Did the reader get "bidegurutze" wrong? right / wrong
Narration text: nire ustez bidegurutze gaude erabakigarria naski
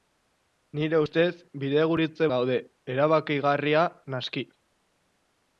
right